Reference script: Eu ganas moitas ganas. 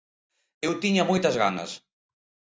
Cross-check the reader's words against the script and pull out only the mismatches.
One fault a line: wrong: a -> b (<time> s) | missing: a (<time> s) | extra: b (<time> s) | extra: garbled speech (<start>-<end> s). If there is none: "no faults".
wrong: ganas -> tiña (0.8 s)